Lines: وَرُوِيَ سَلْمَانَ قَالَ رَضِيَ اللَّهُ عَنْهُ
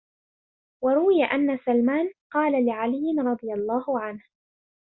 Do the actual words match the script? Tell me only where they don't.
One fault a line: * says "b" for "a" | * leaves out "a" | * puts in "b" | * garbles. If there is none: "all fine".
* puts in "أَنَّ"
* puts in "لِعَلِيٍّ"